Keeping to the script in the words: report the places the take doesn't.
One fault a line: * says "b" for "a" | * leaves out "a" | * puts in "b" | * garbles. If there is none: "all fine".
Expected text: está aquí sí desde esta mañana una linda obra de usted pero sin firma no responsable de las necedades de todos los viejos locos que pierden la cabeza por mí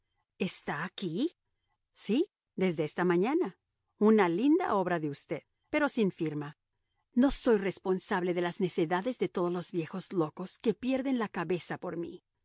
* puts in "soy"